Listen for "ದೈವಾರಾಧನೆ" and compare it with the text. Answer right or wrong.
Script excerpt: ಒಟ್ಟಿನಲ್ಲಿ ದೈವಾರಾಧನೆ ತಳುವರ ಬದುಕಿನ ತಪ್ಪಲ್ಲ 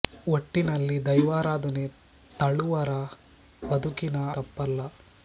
right